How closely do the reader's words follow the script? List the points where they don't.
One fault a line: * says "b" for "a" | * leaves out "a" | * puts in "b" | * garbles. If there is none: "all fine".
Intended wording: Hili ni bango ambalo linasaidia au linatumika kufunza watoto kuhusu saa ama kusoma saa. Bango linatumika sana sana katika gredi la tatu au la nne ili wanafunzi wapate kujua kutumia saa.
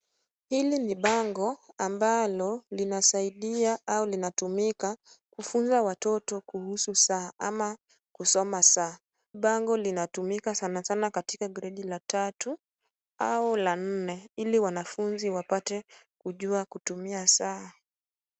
all fine